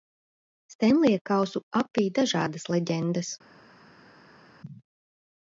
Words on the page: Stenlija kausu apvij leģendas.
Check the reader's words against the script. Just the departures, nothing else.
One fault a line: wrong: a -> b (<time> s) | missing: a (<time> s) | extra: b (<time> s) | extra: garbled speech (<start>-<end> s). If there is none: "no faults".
extra: dažādas (2.2 s)